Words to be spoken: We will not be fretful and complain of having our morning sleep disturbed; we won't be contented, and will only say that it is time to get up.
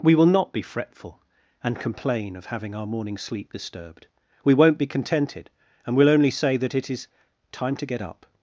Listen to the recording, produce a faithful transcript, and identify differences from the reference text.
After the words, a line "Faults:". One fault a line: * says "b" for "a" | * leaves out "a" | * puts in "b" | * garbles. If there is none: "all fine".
We will not be fretful and complain of having our morning sleep disturbed; we won't be contented, and will only say that it is time to get up.
Faults:
all fine